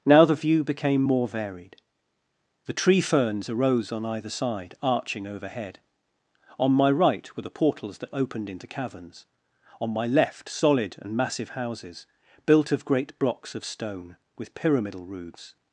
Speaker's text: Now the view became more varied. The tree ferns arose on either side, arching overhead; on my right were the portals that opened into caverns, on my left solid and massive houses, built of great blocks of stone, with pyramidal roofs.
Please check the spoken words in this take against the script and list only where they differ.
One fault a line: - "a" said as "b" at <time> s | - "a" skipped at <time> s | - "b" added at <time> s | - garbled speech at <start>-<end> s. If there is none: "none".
none